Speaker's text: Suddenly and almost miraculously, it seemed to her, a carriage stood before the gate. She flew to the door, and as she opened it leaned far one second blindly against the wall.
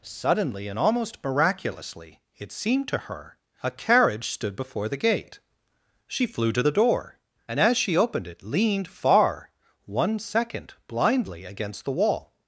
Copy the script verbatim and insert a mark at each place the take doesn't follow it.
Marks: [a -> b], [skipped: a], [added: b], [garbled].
Suddenly and almost miraculously, it seemed to her, a carriage stood before the gate. She flew to the door, and as she opened it leaned far one second blindly against the wall.